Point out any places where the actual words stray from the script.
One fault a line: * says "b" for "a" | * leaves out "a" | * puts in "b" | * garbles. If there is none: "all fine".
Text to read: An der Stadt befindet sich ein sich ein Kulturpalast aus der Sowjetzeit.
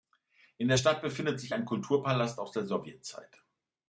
* says "In" for "An"
* leaves out "sich ein"